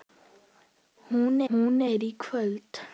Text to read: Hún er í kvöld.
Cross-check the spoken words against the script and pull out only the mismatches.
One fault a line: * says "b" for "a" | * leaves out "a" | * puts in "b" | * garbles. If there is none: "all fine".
* puts in "hún"